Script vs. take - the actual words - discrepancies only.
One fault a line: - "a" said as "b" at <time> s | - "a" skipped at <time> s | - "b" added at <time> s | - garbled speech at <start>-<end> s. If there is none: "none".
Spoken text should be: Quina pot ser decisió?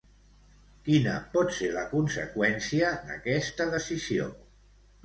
- "la conseqüència d'aquesta" added at 1.8 s